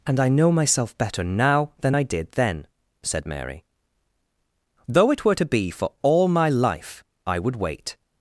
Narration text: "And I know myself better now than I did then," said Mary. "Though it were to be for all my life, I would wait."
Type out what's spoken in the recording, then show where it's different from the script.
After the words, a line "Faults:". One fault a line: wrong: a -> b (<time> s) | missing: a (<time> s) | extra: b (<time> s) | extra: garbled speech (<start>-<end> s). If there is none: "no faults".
"And I know myself better now than I did then," said Mary. "Though it were to be for all my life, I would wait."
Faults:
no faults